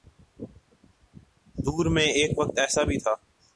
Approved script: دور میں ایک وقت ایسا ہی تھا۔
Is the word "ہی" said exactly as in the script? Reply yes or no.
no